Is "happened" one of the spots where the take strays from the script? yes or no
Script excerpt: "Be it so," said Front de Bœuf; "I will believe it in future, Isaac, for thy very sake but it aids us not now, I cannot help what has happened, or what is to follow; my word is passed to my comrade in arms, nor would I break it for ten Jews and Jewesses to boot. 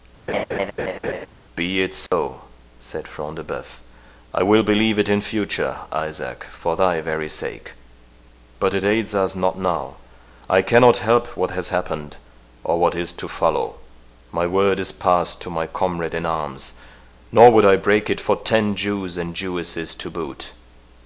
no